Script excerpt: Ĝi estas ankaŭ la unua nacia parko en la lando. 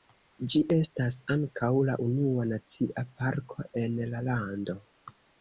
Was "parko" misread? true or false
false